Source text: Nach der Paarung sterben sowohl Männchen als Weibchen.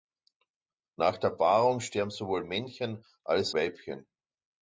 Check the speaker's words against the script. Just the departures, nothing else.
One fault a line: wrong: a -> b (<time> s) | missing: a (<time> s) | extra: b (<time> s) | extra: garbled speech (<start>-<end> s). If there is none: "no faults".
no faults